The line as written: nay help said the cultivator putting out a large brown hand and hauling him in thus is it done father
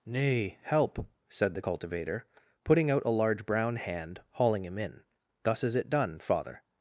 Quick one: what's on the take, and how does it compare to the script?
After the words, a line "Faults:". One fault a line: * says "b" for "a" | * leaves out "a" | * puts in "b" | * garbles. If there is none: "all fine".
nay help said the cultivator putting out a large brown hand hauling him in thus is it done father
Faults:
* leaves out "and"